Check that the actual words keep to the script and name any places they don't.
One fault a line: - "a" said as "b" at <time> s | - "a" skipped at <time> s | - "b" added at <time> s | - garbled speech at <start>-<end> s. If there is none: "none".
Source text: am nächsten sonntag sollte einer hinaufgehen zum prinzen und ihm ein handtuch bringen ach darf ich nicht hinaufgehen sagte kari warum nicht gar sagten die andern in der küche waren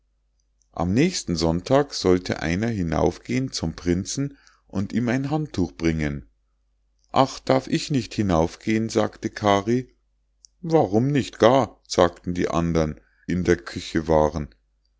none